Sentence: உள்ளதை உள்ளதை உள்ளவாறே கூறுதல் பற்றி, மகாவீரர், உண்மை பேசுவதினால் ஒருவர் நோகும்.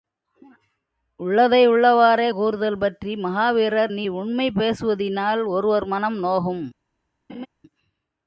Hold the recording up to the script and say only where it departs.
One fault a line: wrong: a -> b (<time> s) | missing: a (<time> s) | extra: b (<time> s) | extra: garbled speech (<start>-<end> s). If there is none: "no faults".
missing: உள்ளதை (1.6 s)
extra: நீ (3.9 s)
extra: மனம் (5.9 s)